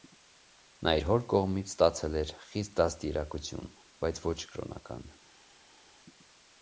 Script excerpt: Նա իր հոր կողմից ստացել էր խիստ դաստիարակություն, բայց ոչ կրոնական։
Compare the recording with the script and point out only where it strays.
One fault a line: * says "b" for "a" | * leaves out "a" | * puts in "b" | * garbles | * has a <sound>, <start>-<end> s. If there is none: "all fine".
all fine